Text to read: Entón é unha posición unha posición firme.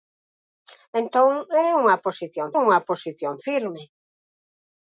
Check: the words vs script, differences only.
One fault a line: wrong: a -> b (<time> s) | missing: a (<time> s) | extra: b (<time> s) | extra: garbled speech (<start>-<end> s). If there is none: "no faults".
no faults